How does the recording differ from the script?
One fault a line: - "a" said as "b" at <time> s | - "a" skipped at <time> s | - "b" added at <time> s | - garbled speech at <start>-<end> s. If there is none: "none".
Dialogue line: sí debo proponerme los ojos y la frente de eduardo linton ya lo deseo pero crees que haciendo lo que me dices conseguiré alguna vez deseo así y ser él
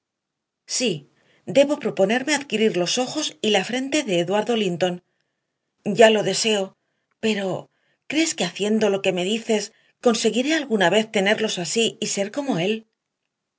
- "adquirir" added at 2.3 s
- "deseo" said as "tenerlos" at 11.1 s
- "como" added at 12.3 s